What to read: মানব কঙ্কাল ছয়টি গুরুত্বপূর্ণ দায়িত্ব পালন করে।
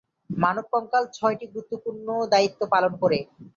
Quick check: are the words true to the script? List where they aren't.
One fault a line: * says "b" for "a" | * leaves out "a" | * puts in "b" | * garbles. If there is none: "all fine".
all fine